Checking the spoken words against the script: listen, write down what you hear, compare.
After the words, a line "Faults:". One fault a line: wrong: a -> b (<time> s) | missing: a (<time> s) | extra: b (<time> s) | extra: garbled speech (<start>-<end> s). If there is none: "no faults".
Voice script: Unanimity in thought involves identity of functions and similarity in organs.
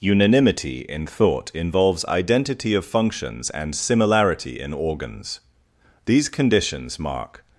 Unanimity in thought involves identity of functions and similarity in organs. These conditions mark
Faults:
extra: These conditions mark (6.1 s)